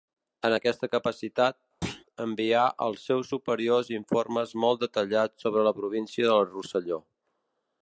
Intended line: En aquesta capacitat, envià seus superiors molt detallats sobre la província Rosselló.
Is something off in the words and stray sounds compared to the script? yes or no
yes